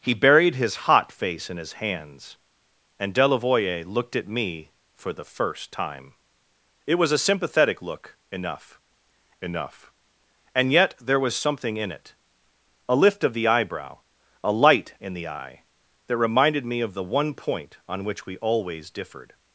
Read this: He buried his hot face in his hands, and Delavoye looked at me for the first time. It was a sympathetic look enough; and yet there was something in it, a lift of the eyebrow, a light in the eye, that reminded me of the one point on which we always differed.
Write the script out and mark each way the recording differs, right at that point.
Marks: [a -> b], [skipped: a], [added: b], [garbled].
He buried his hot face in his hands, and Delavoye looked at me for the first time. It was a sympathetic look enough; [added: enough] and yet there was something in it, a lift of the eyebrow, a light in the eye, that reminded me of the one point on which we always differed.